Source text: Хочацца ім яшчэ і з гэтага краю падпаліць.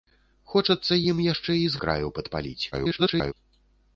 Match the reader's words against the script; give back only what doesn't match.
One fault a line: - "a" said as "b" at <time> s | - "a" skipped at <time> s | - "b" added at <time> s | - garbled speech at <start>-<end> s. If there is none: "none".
- "гэтага" skipped at 1.8 s
- garbled speech at 2.7-3.3 s